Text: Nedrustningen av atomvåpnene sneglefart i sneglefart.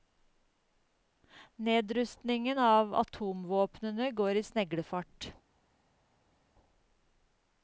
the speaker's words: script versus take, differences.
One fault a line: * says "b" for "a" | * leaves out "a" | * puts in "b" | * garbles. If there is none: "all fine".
* says "går" for "sneglefart"